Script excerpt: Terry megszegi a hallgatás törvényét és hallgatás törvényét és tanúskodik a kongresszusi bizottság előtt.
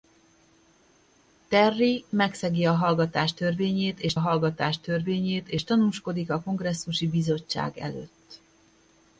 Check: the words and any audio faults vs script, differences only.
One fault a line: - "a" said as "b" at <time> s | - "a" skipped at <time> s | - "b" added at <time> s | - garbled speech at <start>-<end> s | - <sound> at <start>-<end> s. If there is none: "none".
none